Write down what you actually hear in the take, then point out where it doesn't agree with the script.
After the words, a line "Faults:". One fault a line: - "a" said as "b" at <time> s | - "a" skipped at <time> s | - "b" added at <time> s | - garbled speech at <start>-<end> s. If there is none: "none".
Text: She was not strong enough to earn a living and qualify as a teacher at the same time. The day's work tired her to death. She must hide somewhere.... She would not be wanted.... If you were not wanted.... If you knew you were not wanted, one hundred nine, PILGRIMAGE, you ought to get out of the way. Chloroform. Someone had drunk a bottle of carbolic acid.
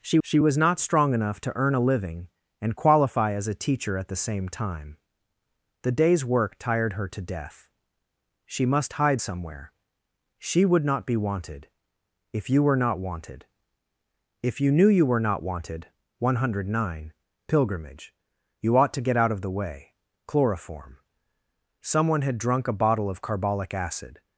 She she was not strong enough to earn a living and qualify as a teacher at the same time. The day's work tired her to death. She must hide somewhere.... She would not be wanted.... If you were not wanted.... If you knew you were not wanted, one hundred nine, PILGRIMAGE, you ought to get out of the way. Chloroform. Someone had drunk a bottle of carbolic acid.
Faults:
- "she" added at 0.2 s